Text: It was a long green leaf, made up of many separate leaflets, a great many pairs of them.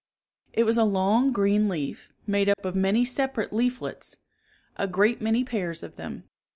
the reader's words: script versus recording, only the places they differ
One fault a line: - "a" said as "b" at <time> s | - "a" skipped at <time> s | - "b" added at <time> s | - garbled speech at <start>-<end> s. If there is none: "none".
none